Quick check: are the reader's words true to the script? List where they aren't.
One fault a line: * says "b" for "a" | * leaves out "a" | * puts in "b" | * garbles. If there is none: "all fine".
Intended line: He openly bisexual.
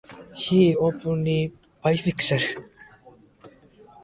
all fine